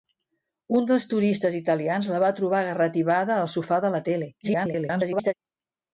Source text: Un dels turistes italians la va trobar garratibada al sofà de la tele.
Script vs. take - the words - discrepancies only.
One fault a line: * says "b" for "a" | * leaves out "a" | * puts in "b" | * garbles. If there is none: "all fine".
* garbles